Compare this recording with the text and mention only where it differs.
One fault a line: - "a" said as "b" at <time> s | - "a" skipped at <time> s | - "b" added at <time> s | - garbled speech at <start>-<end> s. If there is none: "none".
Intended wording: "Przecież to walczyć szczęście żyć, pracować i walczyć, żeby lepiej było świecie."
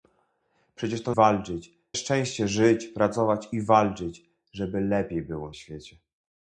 none